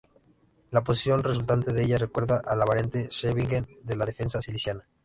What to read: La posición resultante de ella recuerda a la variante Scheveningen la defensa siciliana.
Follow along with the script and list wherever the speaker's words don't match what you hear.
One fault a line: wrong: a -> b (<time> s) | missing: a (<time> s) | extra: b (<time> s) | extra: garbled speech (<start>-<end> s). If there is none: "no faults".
extra: de (3.8 s)